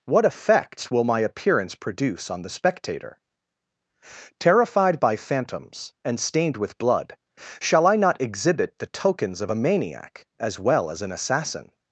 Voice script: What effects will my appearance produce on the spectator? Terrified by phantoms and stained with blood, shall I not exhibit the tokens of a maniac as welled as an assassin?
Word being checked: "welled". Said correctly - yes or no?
no